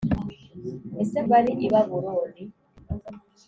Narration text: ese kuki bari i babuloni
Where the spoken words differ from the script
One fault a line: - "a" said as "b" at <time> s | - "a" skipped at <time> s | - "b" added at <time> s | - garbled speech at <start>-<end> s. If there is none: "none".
- "kuki" skipped at 1.2 s